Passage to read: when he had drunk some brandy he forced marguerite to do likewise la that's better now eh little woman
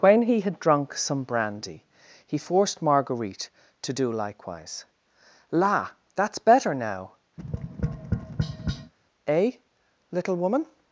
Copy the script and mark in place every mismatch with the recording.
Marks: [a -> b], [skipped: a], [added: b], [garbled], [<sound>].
when he had drunk some brandy he forced marguerite to do likewise la that's better now [tap] eh little woman